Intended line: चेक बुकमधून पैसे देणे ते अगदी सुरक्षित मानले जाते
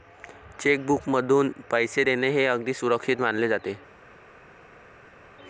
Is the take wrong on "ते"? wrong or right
wrong